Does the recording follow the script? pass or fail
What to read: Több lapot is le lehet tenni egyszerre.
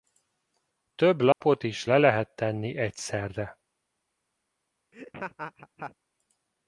pass